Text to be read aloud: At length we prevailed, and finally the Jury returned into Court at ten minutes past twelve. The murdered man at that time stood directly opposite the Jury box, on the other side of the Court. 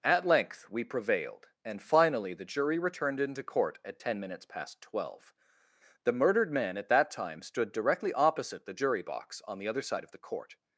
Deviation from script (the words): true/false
false